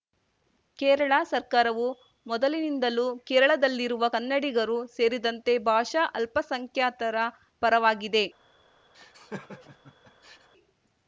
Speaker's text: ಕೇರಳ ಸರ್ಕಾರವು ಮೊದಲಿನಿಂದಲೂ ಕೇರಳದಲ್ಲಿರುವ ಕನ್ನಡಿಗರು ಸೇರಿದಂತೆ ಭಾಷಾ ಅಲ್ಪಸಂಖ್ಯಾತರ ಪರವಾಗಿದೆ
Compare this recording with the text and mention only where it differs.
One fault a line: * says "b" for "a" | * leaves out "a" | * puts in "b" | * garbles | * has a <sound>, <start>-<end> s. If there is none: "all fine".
* has a laugh, 8.9-10.5 s